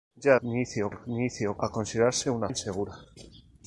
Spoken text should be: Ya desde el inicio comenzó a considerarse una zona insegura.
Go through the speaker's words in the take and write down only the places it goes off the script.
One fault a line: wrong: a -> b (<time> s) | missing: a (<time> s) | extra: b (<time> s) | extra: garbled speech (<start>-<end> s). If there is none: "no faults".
wrong: desde -> inicio (0.4 s)
missing: comenzó (1.6 s)
missing: zona (2.5 s)